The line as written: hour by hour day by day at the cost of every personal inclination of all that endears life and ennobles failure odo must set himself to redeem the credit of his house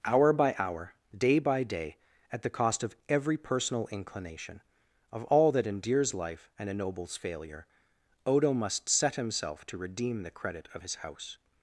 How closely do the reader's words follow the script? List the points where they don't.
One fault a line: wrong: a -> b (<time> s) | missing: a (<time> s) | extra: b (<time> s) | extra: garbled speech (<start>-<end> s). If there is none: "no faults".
no faults